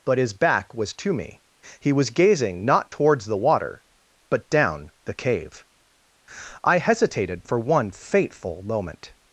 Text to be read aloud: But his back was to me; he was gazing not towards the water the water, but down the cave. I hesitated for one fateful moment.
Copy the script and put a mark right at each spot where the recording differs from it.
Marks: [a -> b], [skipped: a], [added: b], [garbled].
But his back was to me; he was gazing not towards the water [skipped: the water,] but down the cave. I hesitated for one fateful moment.